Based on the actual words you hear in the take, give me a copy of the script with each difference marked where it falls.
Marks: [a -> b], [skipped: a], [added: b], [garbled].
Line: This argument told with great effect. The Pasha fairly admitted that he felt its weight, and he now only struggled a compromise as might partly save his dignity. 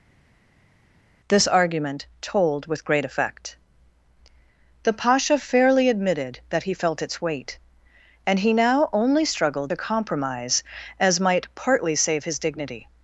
This argument told with great effect. The Pasha fairly admitted that he felt its weight, and he now only struggled a compromise as might partly save his dignity.